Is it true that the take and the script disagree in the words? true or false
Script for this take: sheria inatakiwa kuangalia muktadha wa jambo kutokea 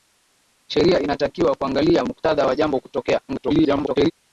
true